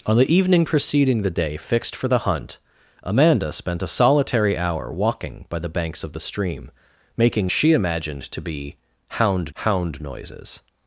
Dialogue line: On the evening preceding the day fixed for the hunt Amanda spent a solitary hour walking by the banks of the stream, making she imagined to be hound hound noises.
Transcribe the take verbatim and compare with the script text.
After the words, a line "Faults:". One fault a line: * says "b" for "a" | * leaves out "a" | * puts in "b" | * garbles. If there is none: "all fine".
On the evening preceding the day fixed for the hunt Amanda spent a solitary hour walking by the banks of the stream, making she imagined to be hound hound noises.
Faults:
all fine